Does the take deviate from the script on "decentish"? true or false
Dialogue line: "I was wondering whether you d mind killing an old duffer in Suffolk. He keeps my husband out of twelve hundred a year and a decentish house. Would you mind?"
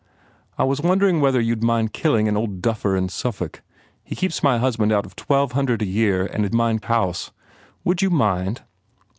true